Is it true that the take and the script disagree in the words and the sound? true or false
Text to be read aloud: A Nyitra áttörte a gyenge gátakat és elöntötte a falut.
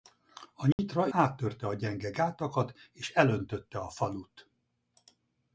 true